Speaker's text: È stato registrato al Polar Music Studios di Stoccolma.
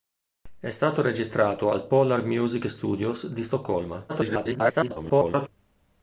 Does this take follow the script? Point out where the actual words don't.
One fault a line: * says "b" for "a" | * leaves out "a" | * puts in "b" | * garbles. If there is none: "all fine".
* garbles